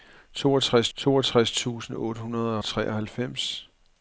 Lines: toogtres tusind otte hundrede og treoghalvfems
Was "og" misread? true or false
true